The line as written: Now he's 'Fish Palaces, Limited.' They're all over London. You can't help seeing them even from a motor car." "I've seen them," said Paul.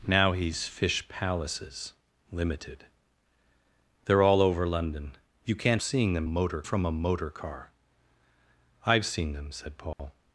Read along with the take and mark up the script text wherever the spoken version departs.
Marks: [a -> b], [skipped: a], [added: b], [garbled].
Now he's 'Fish Palaces, Limited.' They're all over London. You can't [skipped: help] seeing them [even -> motor] from a motor car." "I've seen them," said Paul.